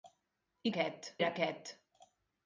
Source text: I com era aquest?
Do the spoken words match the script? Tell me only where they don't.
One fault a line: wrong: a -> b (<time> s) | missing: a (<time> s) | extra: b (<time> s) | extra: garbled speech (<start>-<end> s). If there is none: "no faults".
wrong: com -> aquest (0.7 s)